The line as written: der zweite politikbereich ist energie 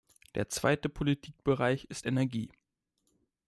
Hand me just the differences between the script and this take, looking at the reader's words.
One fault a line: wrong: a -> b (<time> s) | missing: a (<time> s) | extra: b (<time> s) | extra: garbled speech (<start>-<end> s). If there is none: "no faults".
no faults